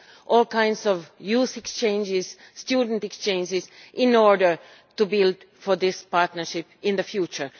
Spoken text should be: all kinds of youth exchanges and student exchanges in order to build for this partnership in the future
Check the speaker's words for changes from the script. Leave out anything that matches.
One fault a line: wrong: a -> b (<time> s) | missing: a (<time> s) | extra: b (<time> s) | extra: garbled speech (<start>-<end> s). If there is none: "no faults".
no faults